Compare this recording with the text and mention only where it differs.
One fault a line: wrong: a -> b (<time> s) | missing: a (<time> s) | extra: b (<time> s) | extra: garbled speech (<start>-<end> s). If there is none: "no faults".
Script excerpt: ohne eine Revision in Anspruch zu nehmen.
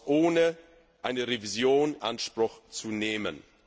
missing: in (1.9 s)